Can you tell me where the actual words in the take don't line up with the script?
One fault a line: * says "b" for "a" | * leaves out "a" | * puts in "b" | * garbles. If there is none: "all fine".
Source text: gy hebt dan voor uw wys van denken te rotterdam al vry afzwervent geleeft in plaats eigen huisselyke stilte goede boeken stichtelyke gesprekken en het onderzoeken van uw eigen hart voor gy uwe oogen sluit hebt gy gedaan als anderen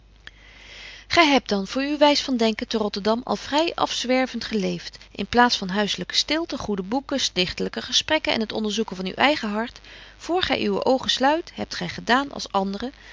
* says "van" for "eigen"